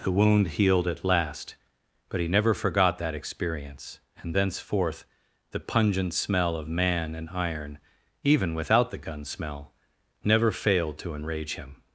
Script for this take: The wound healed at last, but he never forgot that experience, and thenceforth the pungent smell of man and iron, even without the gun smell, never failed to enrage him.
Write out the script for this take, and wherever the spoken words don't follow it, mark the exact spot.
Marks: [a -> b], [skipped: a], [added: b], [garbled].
The wound healed at last, but he never forgot that experience, and thenceforth the pungent smell of man and iron, even without the gun smell, never failed to enrage him.